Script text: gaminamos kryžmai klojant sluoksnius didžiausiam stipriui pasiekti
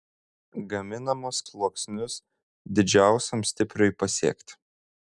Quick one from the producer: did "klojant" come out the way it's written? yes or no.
no